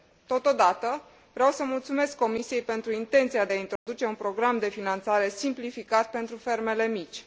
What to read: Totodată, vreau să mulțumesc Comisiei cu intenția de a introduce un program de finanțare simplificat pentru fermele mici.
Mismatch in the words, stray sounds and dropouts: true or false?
true